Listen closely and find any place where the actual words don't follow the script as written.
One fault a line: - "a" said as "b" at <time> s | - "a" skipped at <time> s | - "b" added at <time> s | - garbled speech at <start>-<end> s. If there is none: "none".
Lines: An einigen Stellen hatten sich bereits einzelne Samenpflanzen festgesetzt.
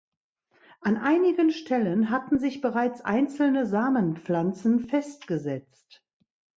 none